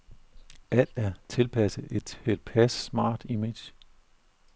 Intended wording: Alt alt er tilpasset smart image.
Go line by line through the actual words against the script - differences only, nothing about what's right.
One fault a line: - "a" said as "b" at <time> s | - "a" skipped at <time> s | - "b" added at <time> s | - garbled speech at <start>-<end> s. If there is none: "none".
- "alt" skipped at 0.9 s
- "et tilpas" added at 1.9 s